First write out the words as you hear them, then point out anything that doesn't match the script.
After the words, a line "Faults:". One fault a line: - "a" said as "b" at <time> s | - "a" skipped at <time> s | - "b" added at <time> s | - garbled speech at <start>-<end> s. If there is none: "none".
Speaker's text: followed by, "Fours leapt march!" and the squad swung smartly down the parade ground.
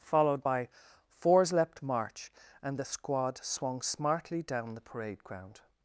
followed by, "Fours leapt march!" and the squad swung smartly down the parade ground.
Faults:
none